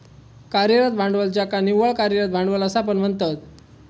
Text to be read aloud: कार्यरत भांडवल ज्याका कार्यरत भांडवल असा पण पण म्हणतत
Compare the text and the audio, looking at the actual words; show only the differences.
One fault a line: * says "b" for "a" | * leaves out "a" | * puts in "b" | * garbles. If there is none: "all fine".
* puts in "निव्वळ"
* leaves out "पण"